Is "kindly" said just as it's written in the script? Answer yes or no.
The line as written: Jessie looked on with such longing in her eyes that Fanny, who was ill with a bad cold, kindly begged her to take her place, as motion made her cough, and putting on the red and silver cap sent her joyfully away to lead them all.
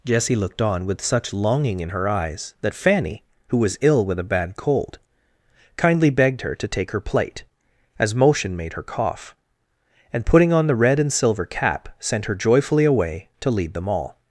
yes